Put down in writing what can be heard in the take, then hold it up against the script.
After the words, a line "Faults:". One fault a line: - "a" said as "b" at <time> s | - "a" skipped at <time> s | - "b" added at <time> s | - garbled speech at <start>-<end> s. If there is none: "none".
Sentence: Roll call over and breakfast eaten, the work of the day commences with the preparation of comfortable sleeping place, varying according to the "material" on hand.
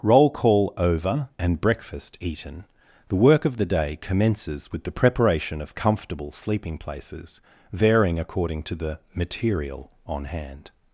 Roll call over and breakfast eaten, the work of the day commences with the preparation of comfortable sleeping places, varying according to the "material" on hand.
Faults:
- "place" said as "places" at 6.8 s